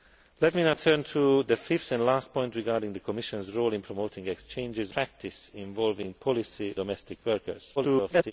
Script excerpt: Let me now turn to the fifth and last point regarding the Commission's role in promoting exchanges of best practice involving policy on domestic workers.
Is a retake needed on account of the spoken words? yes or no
yes